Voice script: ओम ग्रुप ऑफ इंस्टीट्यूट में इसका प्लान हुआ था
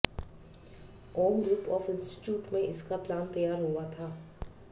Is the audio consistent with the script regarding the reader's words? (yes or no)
no